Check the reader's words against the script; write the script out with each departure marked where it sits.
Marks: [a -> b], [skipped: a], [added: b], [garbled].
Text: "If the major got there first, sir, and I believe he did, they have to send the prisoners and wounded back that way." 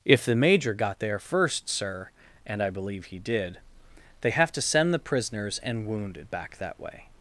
"If the major got there first, sir, and I believe he did, they have to send the prisoners and wounded back that way."